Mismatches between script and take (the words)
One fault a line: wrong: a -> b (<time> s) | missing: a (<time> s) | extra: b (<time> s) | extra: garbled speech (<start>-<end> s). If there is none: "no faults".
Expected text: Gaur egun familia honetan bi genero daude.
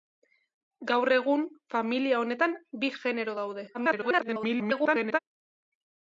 extra: garbled speech (3.7-5.2 s)